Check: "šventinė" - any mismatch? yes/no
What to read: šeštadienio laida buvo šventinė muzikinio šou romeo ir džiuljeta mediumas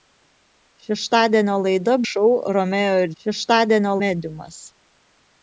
yes